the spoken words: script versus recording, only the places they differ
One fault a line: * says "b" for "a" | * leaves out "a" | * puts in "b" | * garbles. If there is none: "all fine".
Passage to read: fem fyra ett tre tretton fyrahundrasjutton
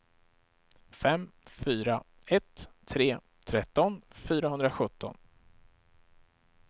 all fine